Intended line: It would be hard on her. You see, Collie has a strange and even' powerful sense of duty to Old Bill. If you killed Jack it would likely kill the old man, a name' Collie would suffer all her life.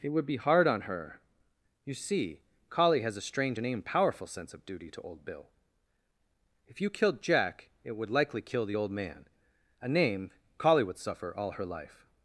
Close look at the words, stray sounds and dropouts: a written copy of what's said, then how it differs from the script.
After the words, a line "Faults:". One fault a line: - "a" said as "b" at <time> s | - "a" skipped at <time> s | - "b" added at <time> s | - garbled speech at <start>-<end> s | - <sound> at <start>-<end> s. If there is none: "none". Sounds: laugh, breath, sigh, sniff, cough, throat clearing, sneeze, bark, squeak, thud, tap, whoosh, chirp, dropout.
It would be hard on her. You see, Collie has a strange and even' powerful sense of duty to Old Bill. If you killed Jack it would likely kill the old man, a name' Collie would suffer all her life.
Faults:
none